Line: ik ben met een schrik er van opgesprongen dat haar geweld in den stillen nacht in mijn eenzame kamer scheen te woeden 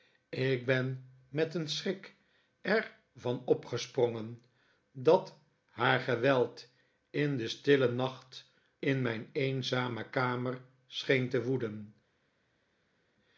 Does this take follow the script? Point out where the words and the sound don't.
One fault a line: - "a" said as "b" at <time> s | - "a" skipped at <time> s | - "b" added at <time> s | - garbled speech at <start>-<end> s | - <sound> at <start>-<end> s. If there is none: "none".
none